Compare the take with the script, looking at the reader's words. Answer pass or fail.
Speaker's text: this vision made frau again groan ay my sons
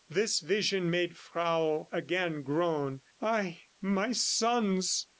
pass